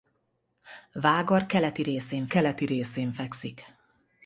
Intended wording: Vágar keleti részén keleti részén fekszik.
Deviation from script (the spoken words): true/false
false